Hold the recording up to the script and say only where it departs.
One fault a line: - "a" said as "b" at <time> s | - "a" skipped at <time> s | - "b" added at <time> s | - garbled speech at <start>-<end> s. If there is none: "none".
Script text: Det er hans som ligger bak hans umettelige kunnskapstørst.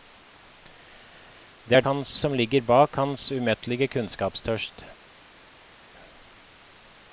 none